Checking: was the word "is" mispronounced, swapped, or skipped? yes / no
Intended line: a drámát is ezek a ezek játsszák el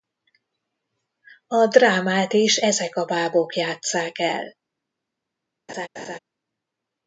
no